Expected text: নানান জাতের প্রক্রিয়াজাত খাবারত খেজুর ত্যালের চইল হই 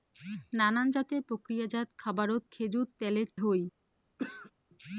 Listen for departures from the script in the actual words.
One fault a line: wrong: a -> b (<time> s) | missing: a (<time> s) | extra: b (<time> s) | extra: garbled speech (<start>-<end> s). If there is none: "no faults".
missing: চইল (3.3 s)